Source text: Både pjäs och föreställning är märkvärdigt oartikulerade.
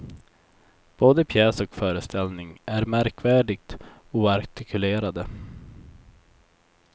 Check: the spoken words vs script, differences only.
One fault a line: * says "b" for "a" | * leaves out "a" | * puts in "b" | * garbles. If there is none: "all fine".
all fine